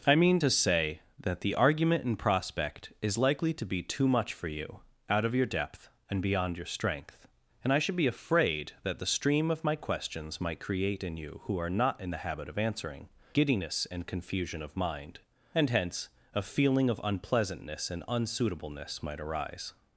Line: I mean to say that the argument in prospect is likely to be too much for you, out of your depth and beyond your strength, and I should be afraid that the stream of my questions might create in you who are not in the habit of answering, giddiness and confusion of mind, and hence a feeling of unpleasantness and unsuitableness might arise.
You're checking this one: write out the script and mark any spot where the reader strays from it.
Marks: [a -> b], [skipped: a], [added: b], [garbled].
I mean to say that the argument in prospect is likely to be too much for you, out of your depth and beyond your strength, and I should be afraid that the stream of my questions might create in you who are not in the habit of answering, giddiness and confusion of mind, and hence a feeling of unpleasantness and unsuitableness might arise.